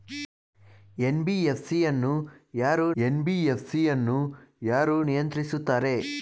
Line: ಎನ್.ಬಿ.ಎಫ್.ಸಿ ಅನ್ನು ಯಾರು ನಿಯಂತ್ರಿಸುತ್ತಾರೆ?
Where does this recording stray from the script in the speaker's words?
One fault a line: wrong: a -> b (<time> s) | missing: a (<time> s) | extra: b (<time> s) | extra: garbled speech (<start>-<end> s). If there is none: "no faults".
extra: ಎನ್.ಬಿ.ಎಫ್.ಸಿ ಅನ್ನು ಯಾರು (3.0 s)